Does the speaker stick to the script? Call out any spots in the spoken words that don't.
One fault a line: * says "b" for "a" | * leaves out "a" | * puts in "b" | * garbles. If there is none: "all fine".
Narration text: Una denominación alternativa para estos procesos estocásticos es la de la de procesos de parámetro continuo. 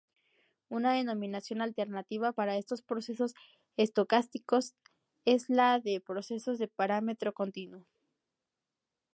* leaves out "la de"